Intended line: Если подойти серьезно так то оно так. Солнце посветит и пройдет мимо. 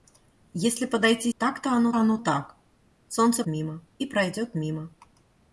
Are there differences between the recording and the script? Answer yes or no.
yes